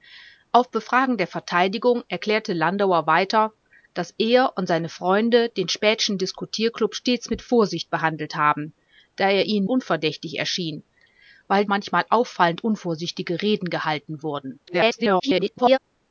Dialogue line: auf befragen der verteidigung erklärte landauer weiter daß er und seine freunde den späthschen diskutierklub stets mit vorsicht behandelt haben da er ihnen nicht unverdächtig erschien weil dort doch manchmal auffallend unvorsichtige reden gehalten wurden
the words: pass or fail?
fail